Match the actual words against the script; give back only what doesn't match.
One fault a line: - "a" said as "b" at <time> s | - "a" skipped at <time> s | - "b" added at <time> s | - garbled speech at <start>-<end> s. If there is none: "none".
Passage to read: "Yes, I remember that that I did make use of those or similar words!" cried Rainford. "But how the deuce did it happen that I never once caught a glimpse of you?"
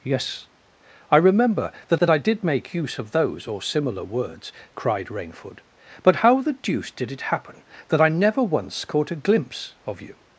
none